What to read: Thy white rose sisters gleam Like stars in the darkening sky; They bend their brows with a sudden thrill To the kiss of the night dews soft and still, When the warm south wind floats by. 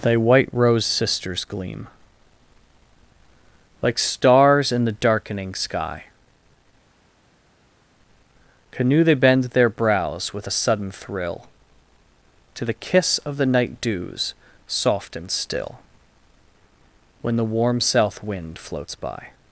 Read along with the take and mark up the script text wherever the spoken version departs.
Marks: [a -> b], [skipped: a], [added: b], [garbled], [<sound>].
Thy white rose sisters gleam Like stars in the darkening sky; [added: canoe] They bend their brows with a sudden thrill To the kiss of the night dews soft and still, When the warm south wind floats by.